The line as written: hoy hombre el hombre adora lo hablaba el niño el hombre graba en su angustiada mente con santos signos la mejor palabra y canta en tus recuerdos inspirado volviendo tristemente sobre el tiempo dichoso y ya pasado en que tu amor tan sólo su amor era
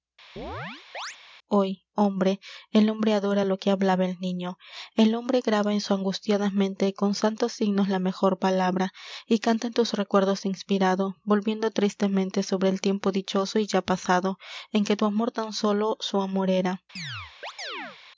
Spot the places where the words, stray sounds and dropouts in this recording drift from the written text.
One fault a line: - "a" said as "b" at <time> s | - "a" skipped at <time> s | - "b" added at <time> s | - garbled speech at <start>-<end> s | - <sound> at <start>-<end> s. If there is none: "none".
- chirp at 0.4-1.2 s
- "que" added at 3.6 s
- chirp at 17.0-18.0 s